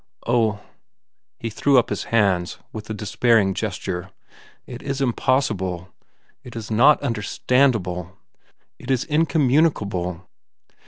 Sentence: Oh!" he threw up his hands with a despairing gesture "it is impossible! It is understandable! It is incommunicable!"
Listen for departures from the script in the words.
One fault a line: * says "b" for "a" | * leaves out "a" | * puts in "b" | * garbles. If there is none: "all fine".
* puts in "not"